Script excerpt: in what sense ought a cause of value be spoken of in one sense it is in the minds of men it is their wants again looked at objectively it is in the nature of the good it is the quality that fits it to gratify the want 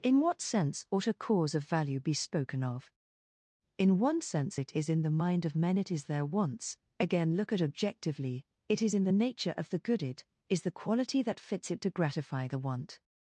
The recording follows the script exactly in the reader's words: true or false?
false